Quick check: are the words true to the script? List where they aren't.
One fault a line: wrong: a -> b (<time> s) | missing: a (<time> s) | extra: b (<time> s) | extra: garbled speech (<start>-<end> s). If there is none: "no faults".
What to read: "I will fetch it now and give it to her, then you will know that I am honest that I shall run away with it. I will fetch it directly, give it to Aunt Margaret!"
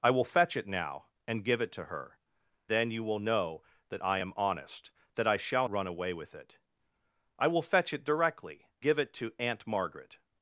no faults